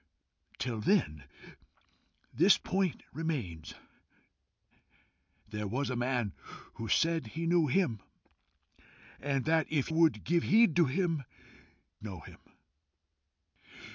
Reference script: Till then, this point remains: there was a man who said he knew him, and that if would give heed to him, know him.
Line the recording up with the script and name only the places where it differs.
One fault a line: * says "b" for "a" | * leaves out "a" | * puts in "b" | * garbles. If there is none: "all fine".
all fine